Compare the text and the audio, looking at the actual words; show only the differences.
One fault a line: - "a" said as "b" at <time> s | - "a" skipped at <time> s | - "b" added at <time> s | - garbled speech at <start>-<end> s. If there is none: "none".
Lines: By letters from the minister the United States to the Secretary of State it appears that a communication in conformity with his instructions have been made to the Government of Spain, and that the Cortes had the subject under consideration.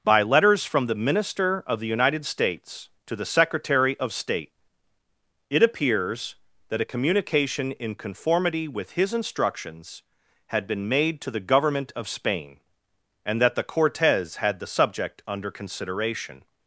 - "of" added at 1.7 s
- "have" said as "had" at 10.5 s